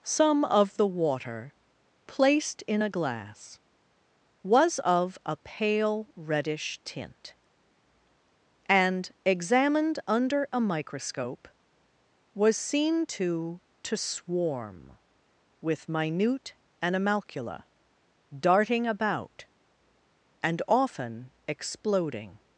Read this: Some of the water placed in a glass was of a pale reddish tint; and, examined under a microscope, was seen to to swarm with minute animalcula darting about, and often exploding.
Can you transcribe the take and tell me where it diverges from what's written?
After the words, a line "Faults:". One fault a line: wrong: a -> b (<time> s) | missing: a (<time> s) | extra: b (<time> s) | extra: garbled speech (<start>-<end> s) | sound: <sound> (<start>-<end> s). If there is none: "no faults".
Some of the water placed in a glass was of a pale reddish tint; and, examined under a microscope, was seen to to swarm with minute animalcula darting about, and often exploding.
Faults:
no faults